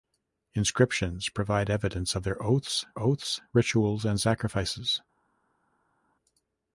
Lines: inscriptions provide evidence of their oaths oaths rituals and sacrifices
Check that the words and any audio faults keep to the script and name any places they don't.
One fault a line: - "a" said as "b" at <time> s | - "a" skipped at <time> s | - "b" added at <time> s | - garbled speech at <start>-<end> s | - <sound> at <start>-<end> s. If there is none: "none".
none